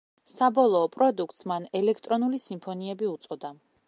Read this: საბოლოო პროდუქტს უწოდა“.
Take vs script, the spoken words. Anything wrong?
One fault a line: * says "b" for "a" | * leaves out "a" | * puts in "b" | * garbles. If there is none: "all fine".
* puts in "მან ელექტრონული სიმფონიები"